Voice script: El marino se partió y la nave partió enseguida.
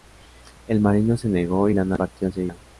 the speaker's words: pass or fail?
fail